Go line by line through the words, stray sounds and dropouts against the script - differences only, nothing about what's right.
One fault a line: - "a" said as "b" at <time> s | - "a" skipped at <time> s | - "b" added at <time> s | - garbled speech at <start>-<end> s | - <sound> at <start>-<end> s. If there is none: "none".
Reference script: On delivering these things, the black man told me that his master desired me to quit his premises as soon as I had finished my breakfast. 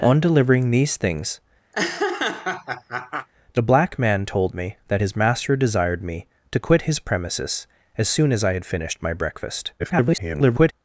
- laugh at 1.7-3.3 s
- garbled speech at 9.8-10.7 s